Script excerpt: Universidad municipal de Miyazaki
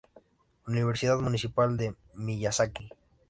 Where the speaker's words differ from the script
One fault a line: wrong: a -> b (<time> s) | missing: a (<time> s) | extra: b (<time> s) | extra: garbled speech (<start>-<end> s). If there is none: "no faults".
no faults